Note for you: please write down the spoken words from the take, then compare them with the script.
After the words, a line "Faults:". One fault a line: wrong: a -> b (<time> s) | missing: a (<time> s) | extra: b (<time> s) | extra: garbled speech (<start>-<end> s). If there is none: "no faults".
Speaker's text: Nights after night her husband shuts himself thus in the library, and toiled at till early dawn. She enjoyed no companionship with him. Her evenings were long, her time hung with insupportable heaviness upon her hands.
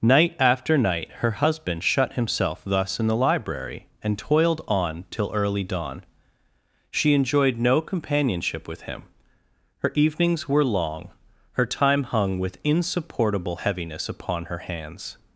Night after night her husband shut himself thus in the library, and toiled on till early dawn. She enjoyed no companionship with him. Her evenings were long, her time hung with insupportable heaviness upon her hands.
Faults:
wrong: Nights -> Night (0.0 s)
wrong: shuts -> shut (1.8 s)
wrong: at -> on (4.7 s)